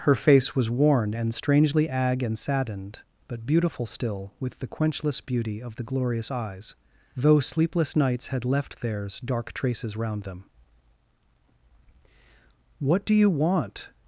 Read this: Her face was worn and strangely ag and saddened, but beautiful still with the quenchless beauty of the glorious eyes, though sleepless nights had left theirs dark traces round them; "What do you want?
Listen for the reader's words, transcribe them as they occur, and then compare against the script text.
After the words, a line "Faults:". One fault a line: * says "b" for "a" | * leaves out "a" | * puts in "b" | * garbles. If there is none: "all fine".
Her face was worn and strangely ag and saddened, but beautiful still with the quenchless beauty of the glorious eyes, though sleepless nights had left theirs dark traces round them; "What do you want?
Faults:
all fine